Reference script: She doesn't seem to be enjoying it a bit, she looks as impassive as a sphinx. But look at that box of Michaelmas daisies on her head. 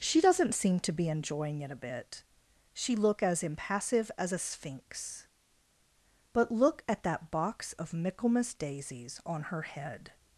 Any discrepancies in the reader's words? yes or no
yes